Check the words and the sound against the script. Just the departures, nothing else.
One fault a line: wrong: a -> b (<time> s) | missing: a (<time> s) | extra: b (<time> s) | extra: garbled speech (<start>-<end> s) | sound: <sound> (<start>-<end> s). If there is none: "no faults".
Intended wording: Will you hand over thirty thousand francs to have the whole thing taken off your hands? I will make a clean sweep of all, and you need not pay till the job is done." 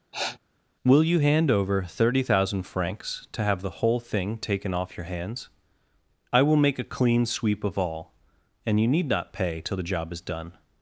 sound: sniff (0.1-0.4 s)